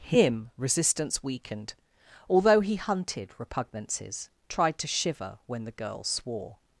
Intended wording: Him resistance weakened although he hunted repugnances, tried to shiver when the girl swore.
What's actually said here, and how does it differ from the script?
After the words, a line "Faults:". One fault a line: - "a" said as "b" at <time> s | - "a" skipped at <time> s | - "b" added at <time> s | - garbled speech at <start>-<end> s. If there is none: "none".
Him resistance weakened although he hunted repugnances, tried to shiver when the girl swore.
Faults:
none